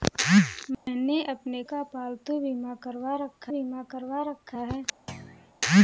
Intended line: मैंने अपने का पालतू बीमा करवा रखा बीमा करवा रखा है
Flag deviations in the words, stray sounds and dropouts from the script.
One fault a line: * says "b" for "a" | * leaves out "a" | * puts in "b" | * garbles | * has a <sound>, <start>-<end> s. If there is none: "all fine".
* has a dropout, 0.7-0.9 s
* has a thud, 5.1-5.5 s